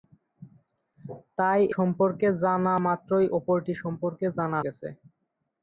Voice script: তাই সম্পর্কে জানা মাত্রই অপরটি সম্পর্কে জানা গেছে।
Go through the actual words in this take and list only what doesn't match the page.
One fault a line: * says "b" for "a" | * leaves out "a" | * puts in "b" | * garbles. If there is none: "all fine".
all fine